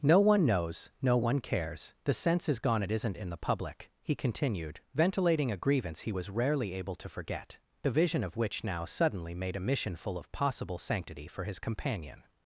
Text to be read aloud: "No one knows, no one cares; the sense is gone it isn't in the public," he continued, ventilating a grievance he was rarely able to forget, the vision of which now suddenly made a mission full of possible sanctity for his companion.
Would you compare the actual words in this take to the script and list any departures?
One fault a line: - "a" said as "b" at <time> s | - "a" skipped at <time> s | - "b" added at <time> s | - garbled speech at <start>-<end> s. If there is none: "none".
none